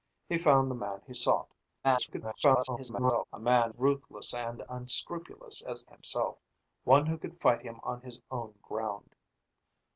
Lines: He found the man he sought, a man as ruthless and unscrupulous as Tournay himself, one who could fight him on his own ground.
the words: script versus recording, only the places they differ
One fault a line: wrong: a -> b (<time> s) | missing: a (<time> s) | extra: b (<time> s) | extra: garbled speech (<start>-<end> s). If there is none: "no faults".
extra: garbled speech (1.8-3.2 s)
missing: as (3.7 s)
missing: Tournay (5.8 s)